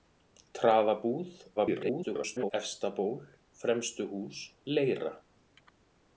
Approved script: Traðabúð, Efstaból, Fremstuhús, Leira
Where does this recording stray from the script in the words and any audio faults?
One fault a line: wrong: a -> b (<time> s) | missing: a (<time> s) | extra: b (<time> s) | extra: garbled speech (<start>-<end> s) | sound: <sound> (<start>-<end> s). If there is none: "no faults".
extra: garbled speech (1.6-2.5 s)